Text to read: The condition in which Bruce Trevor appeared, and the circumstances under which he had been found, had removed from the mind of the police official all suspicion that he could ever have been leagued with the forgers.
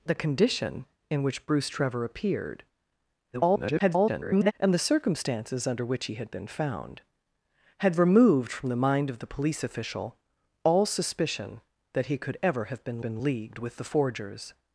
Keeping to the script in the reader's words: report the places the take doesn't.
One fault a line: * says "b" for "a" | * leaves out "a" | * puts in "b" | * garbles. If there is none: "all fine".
* garbles
* puts in "been"